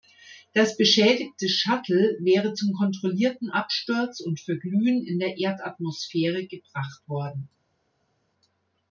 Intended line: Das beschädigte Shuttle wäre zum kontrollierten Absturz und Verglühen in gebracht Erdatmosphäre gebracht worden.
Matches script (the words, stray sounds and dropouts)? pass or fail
fail